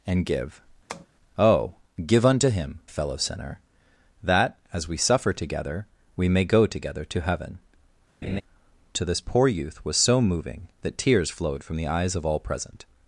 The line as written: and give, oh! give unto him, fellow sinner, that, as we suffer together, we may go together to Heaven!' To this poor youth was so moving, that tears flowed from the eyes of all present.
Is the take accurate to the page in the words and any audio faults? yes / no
no